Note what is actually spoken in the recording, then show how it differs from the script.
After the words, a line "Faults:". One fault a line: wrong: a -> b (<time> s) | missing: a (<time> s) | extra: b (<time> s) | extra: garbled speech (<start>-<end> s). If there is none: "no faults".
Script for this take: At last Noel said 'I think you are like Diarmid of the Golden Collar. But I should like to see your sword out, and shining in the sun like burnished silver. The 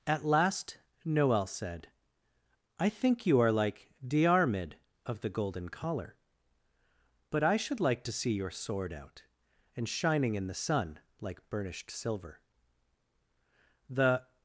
At last Noel said 'I think you are like Diarmid of the Golden Collar. But I should like to see your sword out, and shining in the sun like burnished silver. The
Faults:
no faults